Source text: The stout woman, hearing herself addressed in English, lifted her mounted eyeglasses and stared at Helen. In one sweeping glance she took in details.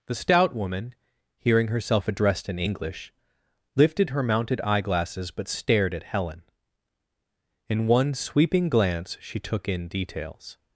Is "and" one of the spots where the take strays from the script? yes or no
yes